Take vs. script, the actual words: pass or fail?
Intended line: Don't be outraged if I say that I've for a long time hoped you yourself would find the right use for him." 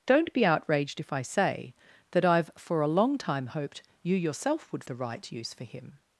fail